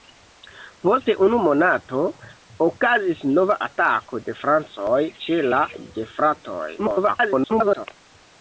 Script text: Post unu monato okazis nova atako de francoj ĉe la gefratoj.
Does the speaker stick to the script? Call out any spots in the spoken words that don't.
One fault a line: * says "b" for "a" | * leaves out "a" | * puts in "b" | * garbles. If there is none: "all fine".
* garbles